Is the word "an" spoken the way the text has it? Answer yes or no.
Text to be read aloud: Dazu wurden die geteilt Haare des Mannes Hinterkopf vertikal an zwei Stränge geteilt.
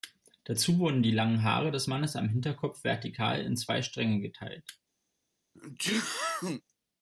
no